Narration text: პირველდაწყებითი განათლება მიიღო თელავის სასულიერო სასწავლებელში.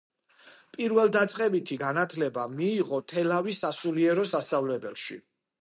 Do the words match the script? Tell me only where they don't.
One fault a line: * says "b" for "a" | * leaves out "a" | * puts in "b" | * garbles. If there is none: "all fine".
all fine